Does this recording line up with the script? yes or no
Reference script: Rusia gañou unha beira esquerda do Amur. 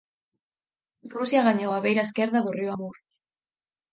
no